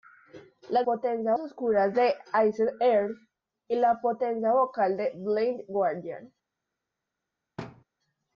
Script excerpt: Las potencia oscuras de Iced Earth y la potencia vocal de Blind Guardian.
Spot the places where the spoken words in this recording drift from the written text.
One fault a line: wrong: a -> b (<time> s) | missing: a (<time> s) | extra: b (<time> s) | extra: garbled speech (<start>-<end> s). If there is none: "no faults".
no faults